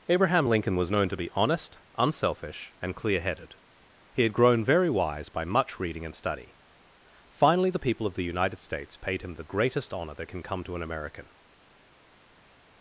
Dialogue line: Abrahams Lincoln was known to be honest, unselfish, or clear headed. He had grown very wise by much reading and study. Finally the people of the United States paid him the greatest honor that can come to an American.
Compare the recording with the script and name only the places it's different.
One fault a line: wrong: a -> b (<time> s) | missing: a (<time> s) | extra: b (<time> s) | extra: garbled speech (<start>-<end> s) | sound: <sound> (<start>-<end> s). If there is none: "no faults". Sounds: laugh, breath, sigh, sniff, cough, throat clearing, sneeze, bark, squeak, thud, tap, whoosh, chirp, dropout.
wrong: Abrahams -> Abraham (0.1 s)
wrong: or -> and (2.8 s)